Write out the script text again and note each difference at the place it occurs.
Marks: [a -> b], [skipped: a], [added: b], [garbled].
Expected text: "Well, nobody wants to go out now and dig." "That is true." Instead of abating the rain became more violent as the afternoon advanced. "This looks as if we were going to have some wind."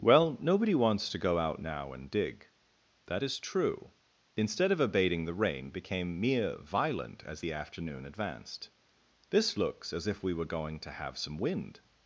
"Well, nobody wants to go out now and dig." "That is true." Instead of abating the rain became [more -> mere] violent as the afternoon advanced. "This looks as if we were going to have some wind."